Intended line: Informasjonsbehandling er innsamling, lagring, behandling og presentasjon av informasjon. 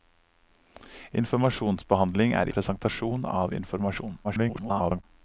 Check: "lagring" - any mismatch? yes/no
yes